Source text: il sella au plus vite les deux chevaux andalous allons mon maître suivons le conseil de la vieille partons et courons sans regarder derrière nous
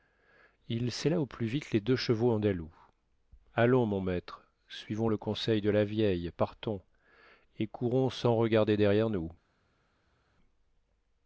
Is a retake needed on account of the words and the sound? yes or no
no